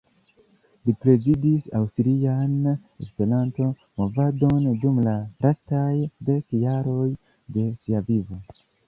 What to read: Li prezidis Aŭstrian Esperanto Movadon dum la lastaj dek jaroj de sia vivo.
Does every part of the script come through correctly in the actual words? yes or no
yes